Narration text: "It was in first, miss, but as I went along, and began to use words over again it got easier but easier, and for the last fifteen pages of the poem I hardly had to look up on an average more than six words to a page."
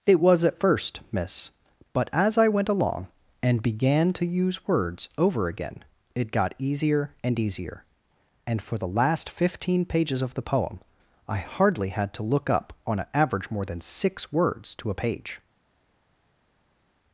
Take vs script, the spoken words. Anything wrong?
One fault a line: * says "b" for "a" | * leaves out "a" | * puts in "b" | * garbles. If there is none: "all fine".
* says "at" for "in"
* says "and" for "but"